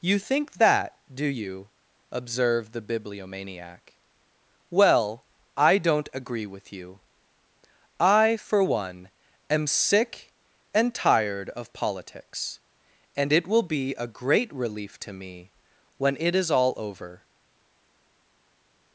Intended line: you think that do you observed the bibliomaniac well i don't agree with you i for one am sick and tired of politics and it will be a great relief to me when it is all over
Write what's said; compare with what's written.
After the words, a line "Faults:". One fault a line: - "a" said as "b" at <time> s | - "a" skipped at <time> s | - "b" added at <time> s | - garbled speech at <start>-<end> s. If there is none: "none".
you think that do you observed the bibliomaniac well i don't agree with you i for one am sick and tired of politics and it will be a great relief to me when it is all over
Faults:
none